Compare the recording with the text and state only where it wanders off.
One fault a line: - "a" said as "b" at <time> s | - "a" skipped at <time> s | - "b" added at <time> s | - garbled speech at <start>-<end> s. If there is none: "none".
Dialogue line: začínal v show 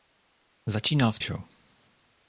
none